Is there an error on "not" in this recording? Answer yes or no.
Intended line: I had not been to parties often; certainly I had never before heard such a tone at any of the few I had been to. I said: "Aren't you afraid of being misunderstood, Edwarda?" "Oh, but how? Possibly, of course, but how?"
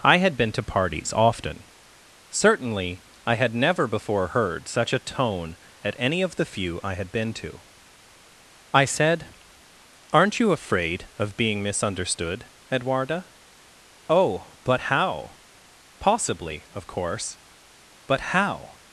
yes